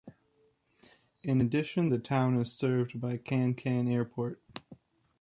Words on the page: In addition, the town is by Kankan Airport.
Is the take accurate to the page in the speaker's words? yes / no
no